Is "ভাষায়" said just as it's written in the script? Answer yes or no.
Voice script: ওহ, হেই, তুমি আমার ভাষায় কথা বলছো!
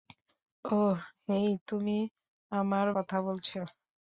no